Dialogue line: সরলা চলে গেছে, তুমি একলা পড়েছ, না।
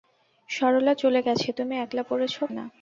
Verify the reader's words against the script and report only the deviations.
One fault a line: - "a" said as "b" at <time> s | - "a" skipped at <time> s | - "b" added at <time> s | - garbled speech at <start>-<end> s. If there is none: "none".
none